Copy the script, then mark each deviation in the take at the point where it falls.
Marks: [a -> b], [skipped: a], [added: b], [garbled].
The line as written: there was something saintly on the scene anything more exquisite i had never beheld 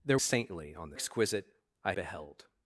there [skipped: was something] saintly on the [skipped: scene anything more] exquisite i [skipped: had never] beheld